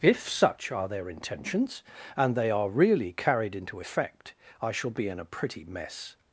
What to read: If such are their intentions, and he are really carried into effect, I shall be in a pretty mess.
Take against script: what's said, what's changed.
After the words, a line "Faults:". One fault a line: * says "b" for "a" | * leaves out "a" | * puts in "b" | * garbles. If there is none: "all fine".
If such are their intentions, and they are really carried into effect, I shall be in a pretty mess.
Faults:
* says "they" for "he"